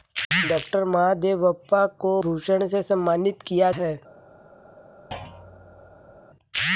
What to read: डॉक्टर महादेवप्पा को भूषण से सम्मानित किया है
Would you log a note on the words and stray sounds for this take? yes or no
yes